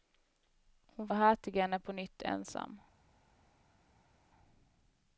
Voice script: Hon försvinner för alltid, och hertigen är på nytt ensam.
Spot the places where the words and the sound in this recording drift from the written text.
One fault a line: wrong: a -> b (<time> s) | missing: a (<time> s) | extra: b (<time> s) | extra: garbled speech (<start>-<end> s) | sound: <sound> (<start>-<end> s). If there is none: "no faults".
missing: försvinner för alltid (1.1 s)